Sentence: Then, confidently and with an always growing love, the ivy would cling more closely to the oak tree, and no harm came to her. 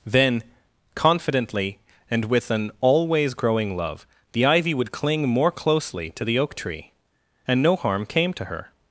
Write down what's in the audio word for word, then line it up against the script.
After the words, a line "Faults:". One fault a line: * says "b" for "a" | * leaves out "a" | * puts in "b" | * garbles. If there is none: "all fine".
Then, confidently and with an always growing love, the ivy would cling more closely to the oak tree, and no harm came to her.
Faults:
all fine